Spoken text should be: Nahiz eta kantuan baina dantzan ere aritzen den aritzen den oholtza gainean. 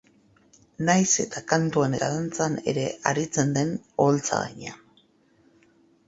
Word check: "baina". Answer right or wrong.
wrong